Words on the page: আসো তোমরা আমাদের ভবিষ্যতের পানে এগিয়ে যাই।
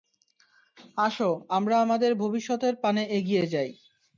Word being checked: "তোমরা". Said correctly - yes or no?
no